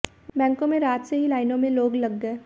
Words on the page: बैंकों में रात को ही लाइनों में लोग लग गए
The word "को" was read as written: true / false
false